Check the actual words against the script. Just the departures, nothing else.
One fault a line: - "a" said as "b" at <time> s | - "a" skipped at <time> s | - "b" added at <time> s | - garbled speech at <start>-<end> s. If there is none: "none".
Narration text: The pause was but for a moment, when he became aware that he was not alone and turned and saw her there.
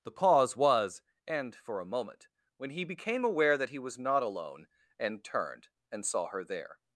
- "but" said as "and" at 1.3 s